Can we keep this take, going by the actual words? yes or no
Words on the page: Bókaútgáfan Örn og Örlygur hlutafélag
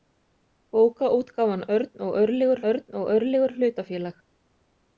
no